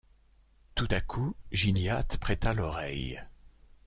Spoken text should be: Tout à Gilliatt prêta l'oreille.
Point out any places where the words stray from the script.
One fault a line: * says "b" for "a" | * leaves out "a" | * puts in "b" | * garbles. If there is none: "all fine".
* puts in "coup"